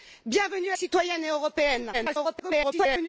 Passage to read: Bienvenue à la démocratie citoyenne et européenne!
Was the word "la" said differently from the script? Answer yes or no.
yes